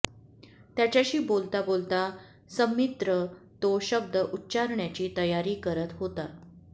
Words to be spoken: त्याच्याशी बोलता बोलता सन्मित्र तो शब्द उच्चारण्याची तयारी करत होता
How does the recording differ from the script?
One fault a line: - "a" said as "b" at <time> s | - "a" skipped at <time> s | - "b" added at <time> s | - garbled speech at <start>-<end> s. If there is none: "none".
none